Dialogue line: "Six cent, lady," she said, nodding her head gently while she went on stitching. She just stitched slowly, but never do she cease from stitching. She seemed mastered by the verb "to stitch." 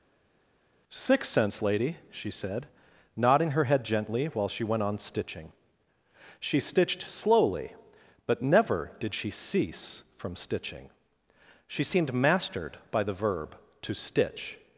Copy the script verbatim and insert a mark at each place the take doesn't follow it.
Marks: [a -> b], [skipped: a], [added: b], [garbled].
"Six [cent, -> cents] lady," she said, nodding her head gently while she went on stitching. She [skipped: just] stitched slowly, but never [do -> did] she cease from stitching. She seemed mastered by the verb "to stitch."